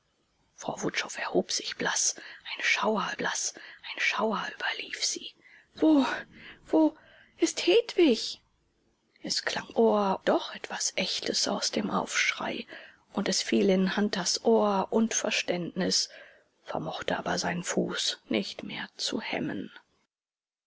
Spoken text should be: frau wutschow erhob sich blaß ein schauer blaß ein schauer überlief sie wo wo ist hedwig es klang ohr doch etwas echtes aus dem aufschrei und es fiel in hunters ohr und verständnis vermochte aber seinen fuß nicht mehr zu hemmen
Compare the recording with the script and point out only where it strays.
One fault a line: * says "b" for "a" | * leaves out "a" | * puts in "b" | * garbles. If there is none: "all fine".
all fine